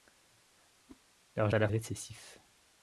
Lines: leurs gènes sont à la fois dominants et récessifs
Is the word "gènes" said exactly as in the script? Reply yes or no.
no